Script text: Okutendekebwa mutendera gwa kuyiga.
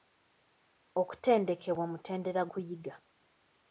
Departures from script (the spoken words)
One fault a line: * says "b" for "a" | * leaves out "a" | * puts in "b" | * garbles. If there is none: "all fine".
* leaves out "gwa"